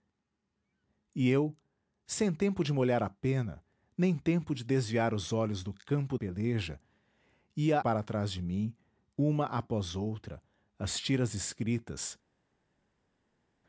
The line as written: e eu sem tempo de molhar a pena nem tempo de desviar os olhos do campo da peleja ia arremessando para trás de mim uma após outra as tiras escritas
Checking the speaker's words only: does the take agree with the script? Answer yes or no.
no